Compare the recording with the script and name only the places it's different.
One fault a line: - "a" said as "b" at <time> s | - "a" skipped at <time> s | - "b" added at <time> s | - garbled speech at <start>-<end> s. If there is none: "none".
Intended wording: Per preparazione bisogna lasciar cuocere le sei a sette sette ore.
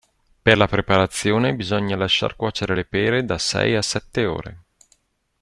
- "la" added at 0.6 s
- "pere da" added at 2.8 s
- "sette" skipped at 4.3 s